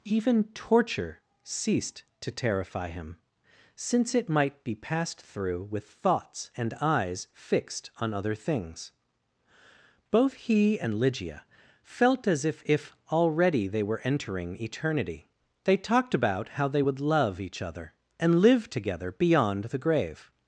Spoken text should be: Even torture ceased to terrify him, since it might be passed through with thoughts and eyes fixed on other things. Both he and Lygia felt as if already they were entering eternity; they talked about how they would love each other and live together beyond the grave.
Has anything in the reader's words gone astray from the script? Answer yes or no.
yes